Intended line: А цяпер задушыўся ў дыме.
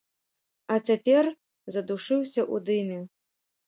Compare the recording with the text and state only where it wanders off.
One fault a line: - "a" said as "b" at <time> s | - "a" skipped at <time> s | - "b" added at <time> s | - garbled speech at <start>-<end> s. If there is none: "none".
none